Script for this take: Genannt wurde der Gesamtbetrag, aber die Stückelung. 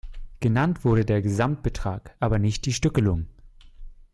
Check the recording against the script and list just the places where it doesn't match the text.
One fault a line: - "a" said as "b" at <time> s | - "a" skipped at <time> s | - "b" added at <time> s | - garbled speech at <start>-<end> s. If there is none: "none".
- "nicht" added at 2.4 s